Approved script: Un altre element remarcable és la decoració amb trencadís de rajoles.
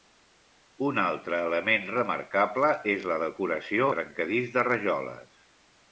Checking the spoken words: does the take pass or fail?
fail